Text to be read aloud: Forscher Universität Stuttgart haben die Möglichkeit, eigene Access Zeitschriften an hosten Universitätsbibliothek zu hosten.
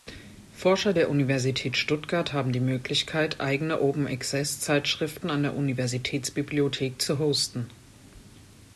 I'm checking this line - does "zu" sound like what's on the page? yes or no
yes